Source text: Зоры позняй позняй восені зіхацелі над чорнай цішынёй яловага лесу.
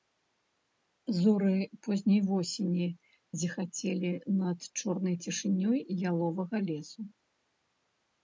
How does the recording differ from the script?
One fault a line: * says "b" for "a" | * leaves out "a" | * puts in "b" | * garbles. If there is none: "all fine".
* leaves out "позняй"